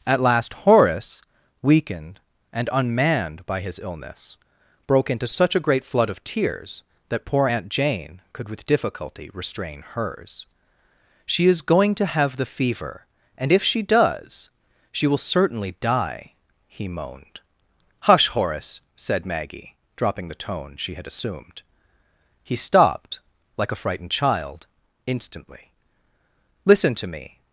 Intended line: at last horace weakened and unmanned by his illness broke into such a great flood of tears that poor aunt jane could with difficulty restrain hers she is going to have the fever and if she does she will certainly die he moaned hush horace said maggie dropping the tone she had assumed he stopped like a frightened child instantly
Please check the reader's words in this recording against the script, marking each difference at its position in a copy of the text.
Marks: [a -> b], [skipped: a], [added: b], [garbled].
at last horace weakened and unmanned by his illness broke into such a great flood of tears that poor aunt jane could with difficulty restrain hers she is going to have the fever and if she does she will certainly die he moaned hush horace said maggie dropping the tone she had assumed he stopped like a frightened child instantly [added: listen to me]